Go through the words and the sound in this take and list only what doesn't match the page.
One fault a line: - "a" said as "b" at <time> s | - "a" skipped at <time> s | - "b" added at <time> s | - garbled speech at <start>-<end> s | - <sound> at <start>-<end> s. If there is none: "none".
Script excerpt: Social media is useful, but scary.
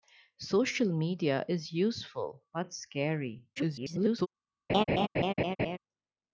- garbled speech at 3.6-4.3 s
- laugh at 4.7-5.8 s